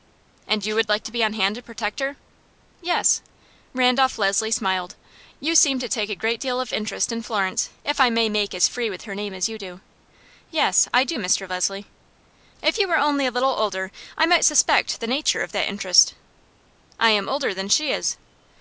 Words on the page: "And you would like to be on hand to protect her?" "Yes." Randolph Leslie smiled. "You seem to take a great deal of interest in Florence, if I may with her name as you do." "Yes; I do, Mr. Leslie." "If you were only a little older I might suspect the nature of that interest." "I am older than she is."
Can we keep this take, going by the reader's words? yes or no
no